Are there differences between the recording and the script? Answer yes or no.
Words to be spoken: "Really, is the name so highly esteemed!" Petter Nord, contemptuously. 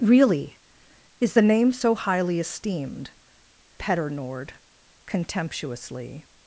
no